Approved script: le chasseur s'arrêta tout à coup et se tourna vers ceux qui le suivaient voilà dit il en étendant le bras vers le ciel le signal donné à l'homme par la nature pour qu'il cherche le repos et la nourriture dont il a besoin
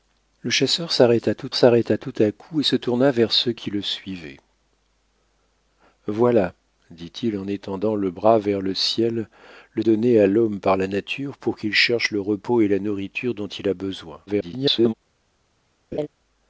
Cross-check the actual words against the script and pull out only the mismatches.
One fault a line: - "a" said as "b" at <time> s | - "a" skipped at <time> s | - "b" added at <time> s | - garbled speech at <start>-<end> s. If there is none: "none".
- "s'arrêta tout" added at 1.5 s
- "signal" skipped at 9.8 s
- garbled speech at 14.3-14.9 s